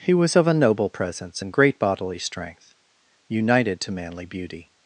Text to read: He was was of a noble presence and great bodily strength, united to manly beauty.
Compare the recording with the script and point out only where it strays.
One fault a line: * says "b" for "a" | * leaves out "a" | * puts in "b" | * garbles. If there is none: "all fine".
* leaves out "was"